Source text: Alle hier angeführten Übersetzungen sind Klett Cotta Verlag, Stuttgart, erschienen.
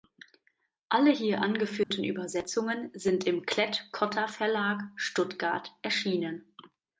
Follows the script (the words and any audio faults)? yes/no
no